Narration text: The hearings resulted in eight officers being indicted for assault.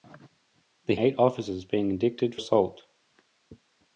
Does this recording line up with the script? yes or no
no